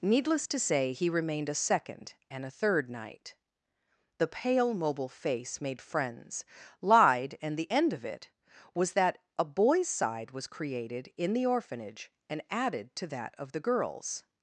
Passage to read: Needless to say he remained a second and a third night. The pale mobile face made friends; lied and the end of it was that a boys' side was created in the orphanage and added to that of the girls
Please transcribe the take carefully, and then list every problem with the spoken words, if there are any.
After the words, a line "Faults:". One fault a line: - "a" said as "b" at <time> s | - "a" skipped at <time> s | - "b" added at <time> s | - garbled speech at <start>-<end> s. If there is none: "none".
Needless to say he remained a second and a third night. The pale mobile face made friends; lied and the end of it was that a boys' side was created in the orphanage and added to that of the girls
Faults:
none